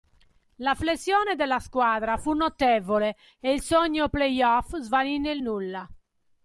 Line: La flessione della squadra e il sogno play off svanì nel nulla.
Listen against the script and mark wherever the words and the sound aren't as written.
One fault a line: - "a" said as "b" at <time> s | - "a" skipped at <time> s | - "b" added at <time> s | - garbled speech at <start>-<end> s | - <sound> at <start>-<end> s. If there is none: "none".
- "fu notevole" added at 2.2 s